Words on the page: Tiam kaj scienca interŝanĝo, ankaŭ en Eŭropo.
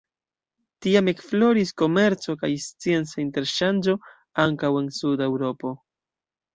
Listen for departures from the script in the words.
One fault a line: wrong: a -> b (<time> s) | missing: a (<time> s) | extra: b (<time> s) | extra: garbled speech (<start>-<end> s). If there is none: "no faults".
extra: ekfloris komerco (1.1 s)
extra: suda (5.0 s)